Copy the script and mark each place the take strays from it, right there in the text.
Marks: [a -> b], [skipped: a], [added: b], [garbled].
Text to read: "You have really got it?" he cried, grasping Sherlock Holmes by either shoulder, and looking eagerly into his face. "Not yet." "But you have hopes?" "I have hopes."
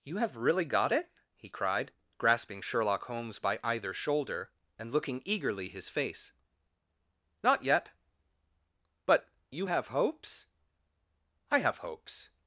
"You have really got it?" he cried, grasping Sherlock Holmes by either shoulder, and looking eagerly [skipped: into] his face. "Not yet." "But you have hopes?" "I have hopes."